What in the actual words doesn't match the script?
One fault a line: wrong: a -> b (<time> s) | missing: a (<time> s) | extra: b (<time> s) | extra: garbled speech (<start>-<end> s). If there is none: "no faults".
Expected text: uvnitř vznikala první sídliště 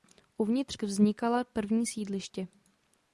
no faults